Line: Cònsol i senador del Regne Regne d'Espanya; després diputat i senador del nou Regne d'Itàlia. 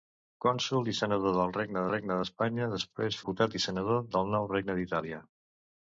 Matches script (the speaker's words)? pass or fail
pass